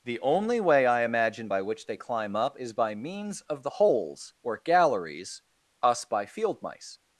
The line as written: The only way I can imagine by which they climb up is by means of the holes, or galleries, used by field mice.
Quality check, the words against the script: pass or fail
fail